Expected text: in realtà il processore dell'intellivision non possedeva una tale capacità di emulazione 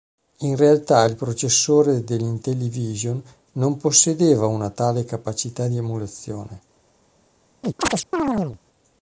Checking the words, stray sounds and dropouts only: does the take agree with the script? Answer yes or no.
no